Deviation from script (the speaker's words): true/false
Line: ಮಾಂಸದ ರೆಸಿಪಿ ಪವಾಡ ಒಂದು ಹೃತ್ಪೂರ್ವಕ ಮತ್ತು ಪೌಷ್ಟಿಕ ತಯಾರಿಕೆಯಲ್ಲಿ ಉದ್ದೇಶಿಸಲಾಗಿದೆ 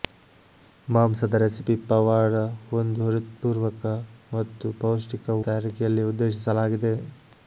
false